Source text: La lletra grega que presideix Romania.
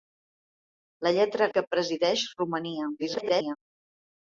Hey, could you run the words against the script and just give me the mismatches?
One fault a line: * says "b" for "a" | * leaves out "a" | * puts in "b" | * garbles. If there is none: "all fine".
* leaves out "grega"
* garbles